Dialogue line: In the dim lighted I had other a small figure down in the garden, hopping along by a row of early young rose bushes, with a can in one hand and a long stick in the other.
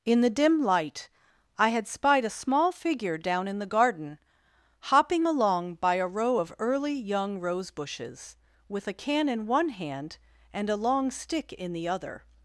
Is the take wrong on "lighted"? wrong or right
wrong